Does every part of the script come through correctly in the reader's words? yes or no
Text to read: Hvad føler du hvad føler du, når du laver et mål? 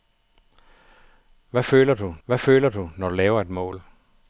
yes